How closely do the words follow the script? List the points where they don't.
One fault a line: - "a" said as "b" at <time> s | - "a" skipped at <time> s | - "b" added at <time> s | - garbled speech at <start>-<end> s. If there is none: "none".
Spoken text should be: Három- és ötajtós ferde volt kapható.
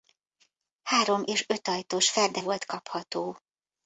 none